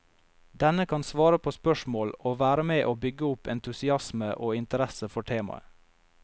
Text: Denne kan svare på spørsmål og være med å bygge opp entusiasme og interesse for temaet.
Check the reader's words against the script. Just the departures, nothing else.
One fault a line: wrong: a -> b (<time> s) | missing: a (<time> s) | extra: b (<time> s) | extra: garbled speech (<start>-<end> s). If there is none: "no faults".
no faults